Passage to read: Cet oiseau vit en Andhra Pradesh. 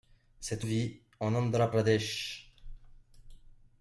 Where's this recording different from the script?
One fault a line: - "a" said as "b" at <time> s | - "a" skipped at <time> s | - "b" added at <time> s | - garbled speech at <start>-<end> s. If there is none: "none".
- "oiseau" skipped at 0.7 s